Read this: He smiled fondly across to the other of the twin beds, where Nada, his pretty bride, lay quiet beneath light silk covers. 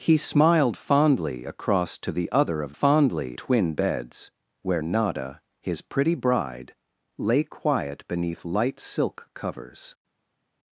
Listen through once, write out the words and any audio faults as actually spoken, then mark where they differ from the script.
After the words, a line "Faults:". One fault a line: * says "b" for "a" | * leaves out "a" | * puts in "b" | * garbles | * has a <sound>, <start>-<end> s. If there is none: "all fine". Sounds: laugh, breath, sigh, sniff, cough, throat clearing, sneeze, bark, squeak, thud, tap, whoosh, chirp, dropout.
He smiled fondly across to the other of fondly twin beds, where Nada, his pretty bride, lay quiet beneath light silk covers.
Faults:
* says "fondly" for "the"